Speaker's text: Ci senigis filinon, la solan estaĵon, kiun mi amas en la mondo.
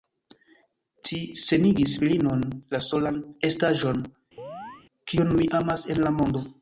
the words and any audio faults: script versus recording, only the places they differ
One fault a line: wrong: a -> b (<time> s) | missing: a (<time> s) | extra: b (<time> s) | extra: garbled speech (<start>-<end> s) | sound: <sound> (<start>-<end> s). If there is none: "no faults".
sound: chirp (4.4-4.9 s)